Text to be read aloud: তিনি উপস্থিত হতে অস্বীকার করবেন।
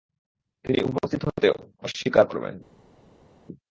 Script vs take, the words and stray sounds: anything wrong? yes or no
no